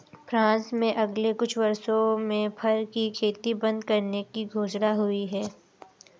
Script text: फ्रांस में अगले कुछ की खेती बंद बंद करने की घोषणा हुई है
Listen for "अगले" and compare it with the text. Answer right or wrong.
right